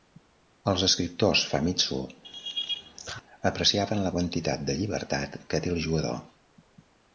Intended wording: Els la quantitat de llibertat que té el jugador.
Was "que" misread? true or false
false